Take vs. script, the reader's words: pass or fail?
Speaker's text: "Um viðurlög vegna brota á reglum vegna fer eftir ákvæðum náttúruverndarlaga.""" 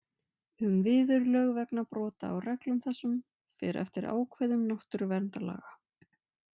fail